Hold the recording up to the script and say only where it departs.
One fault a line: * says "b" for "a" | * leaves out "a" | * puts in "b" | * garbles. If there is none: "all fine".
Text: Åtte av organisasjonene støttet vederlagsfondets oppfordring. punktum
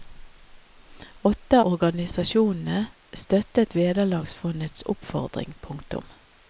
* leaves out "av"